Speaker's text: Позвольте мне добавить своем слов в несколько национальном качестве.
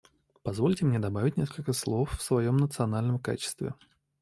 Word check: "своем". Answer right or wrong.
wrong